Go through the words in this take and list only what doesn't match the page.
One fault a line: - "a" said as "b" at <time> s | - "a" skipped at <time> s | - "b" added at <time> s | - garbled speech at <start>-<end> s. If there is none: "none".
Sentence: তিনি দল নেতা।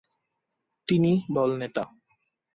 none